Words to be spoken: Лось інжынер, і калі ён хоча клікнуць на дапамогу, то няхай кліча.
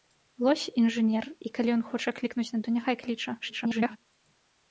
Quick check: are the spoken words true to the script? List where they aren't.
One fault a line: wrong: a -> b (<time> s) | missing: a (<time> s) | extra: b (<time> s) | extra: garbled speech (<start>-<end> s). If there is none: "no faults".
missing: дапамогу (2.6 s)
extra: garbled speech (3.4-4.0 s)